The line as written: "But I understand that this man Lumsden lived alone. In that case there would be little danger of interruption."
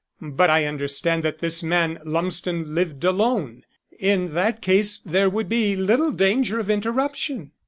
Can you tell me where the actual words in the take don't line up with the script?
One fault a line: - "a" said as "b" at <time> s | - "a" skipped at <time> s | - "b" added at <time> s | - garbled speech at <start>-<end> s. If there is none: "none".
none